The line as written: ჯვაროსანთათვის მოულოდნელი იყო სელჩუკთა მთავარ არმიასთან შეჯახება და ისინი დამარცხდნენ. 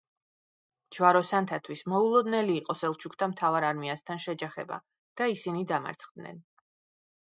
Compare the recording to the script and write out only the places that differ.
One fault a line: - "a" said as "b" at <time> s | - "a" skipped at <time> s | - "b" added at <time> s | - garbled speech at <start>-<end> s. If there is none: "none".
none